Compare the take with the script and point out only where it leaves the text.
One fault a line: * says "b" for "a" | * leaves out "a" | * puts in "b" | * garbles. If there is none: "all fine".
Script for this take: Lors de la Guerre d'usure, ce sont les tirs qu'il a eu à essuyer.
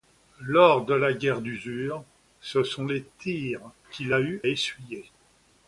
* leaves out "à"